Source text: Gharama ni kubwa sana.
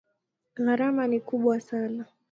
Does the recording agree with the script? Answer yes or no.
yes